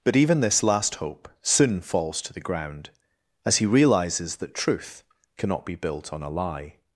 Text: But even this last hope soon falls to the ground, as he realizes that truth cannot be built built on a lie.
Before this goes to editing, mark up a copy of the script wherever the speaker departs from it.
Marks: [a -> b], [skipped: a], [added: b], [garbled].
But even this last hope soon falls to the ground, as he realizes that truth cannot be built [skipped: built] on a lie.